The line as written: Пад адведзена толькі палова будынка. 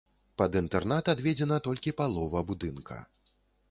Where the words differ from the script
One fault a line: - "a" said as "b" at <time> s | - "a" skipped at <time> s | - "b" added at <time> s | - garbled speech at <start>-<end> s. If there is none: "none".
- "інтэрнат" added at 0.6 s